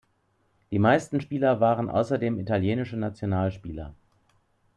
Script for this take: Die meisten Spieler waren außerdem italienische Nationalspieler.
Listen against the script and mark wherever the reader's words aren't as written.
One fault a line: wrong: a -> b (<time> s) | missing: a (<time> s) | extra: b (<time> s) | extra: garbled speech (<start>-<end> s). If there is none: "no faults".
no faults